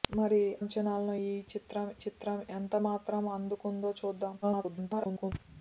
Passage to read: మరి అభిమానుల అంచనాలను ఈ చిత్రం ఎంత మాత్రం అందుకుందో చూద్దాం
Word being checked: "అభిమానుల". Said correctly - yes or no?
no